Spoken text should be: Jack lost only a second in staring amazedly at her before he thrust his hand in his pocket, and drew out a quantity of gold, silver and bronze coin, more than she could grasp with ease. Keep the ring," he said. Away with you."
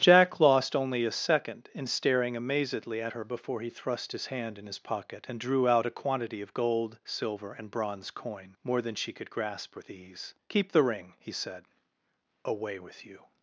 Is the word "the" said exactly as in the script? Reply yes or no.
yes